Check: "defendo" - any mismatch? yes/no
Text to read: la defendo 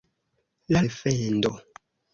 no